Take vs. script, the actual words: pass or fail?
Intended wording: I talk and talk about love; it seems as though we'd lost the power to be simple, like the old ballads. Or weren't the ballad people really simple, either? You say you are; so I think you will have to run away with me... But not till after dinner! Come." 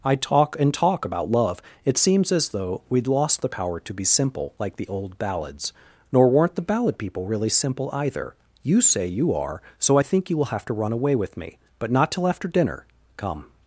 fail